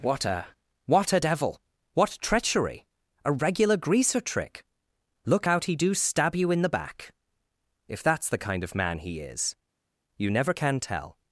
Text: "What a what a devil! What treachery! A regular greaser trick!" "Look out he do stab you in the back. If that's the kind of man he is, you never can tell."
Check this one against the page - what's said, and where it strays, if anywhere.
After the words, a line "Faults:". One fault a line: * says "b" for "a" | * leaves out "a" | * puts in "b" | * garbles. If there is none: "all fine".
"What a what a devil! What treachery! A regular greaser trick!" "Look out he do stab you in the back. If that's the kind of man he is, you never can tell."
Faults:
all fine